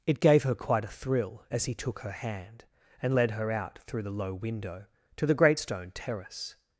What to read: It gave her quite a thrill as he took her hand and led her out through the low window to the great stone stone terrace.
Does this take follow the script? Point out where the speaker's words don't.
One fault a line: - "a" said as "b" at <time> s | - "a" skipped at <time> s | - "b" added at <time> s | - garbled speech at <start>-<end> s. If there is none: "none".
- "stone" skipped at 5.9 s